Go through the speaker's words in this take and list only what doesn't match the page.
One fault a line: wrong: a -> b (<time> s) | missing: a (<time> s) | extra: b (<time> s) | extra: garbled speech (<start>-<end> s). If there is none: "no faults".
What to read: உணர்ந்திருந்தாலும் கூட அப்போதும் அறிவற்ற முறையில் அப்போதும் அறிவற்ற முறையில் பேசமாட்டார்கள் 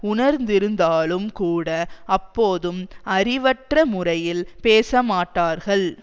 missing: அப்போதும் அறிவற்ற முறையில் (4.4 s)